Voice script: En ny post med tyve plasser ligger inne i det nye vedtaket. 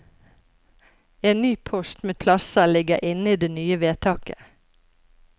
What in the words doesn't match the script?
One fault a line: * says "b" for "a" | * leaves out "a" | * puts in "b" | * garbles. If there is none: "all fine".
* leaves out "tyve"